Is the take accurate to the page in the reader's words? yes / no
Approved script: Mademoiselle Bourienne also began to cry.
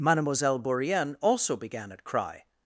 no